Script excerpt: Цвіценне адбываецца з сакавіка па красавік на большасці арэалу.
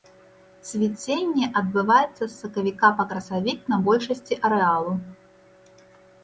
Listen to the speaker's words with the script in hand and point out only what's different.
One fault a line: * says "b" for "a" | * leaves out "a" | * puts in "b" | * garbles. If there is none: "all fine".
all fine